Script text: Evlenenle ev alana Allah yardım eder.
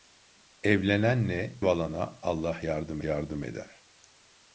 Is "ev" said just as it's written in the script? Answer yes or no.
no